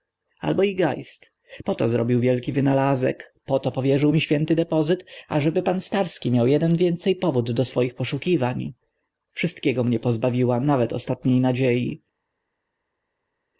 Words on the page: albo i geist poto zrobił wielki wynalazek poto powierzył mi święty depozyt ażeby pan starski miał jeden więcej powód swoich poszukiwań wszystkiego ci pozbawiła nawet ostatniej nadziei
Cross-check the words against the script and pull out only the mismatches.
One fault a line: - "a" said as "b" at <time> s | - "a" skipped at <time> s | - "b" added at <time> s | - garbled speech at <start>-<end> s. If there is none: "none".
- "do" added at 7.5 s
- "ci" said as "mnie" at 9.8 s